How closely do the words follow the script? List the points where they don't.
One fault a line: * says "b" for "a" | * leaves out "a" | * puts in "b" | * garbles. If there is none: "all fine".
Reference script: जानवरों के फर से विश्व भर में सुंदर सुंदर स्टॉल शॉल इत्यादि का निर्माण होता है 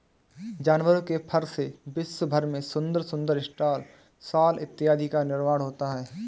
all fine